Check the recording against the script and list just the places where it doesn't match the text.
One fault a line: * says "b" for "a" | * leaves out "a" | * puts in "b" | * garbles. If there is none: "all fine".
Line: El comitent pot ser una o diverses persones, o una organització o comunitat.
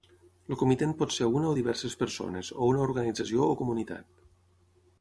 all fine